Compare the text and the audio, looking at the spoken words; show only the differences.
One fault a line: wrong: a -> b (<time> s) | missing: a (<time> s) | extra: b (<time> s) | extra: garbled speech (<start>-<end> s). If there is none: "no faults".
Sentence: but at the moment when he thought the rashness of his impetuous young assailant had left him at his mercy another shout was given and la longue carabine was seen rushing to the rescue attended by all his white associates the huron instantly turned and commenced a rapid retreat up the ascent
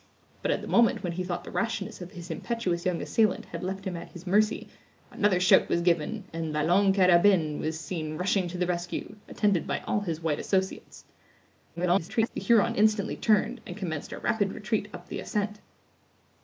extra: garbled speech (11.8-12.3 s)